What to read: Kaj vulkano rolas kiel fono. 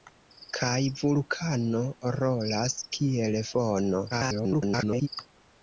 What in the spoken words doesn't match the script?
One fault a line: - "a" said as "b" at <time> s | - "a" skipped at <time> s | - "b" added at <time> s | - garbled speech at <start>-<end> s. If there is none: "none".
- garbled speech at 4.1-5.1 s